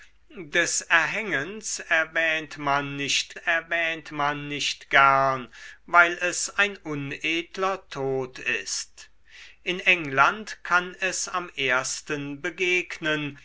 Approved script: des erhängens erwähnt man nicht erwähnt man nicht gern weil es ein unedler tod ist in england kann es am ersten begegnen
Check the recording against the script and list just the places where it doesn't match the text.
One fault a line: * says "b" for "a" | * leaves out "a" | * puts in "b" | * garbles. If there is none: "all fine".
all fine